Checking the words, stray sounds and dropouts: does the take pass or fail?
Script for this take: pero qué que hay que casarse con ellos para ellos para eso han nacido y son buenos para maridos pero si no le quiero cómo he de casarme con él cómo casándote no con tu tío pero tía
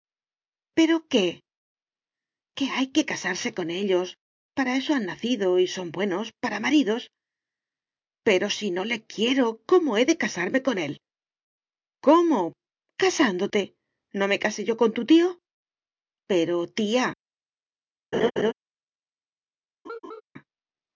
fail